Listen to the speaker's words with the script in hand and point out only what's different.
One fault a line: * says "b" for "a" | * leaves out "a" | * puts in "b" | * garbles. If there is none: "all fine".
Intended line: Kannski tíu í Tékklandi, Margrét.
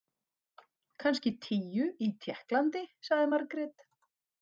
* puts in "sagði"